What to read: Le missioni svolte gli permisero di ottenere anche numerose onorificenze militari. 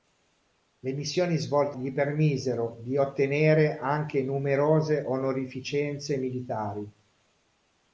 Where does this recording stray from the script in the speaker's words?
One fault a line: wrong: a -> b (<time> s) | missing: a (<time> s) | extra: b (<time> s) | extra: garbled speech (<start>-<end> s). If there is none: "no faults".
no faults